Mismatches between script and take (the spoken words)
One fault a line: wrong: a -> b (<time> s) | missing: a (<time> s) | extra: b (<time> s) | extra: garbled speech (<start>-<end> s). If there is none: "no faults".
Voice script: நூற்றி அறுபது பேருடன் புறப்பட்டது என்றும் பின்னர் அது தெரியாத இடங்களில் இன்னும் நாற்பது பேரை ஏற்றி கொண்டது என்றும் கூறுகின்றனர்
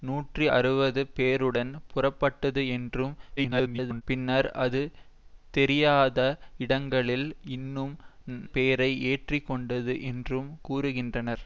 extra: garbled speech (3.4-4.0 s)
missing: நாற்பது (7.9 s)